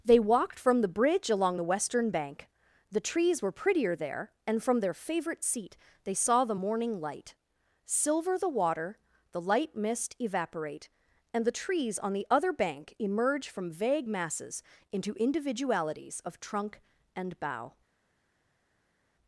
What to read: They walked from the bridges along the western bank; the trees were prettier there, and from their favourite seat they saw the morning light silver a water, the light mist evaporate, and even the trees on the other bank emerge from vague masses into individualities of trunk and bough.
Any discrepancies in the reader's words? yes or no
yes